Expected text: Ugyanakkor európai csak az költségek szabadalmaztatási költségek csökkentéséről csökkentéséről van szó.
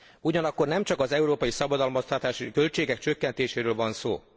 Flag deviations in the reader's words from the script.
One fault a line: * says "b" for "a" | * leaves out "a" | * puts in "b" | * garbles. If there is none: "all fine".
* says "nem" for "európai"
* says "európai" for "költségek"
* leaves out "csökkentéséről"